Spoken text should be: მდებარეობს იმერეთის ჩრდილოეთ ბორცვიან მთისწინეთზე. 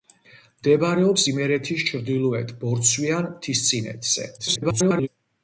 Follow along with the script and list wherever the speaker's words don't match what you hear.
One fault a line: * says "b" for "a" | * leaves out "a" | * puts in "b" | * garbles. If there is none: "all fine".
* garbles